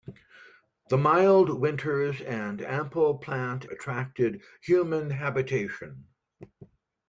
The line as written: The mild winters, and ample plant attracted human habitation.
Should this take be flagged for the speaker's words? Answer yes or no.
no